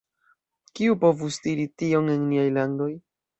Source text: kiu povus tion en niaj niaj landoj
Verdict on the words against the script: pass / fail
fail